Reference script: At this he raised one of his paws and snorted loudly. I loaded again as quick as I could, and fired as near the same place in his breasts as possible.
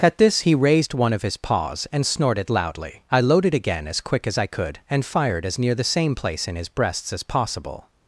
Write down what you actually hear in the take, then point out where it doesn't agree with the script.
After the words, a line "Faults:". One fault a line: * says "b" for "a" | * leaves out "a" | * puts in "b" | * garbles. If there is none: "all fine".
At this he raised one of his paws and snorted loudly. I loaded again as quick as I could, and fired as near the same place in his breasts as possible.
Faults:
all fine